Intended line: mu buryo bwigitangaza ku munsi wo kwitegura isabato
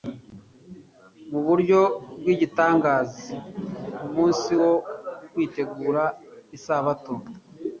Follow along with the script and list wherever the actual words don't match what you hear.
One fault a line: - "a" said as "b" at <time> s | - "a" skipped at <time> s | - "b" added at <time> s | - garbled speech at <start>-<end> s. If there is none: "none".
none